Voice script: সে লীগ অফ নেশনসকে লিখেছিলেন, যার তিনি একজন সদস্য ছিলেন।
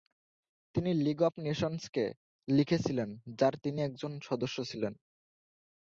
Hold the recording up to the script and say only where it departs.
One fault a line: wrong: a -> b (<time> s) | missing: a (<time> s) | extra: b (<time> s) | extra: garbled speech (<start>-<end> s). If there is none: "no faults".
wrong: সে -> তিনি (0.8 s)